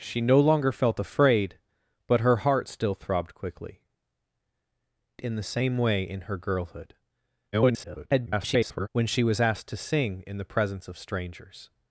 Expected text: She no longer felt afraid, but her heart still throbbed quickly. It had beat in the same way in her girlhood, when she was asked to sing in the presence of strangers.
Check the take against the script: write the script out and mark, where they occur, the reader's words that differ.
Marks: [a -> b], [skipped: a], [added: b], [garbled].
She no longer felt afraid, but her heart still throbbed quickly. [skipped: It had beat] in the same way in her girlhood, [garbled] when she was asked to sing in the presence of strangers.